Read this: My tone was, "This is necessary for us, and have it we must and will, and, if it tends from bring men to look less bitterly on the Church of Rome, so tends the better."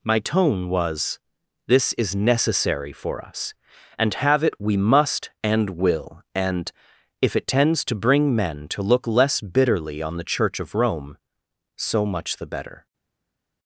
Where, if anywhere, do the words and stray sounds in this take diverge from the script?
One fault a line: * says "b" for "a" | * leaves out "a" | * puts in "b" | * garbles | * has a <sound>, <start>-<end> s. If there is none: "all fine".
* says "to" for "from"
* says "much" for "tends"